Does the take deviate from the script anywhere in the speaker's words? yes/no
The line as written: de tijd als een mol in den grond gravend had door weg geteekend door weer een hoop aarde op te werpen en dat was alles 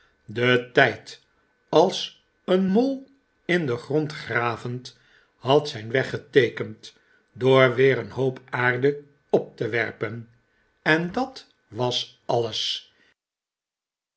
yes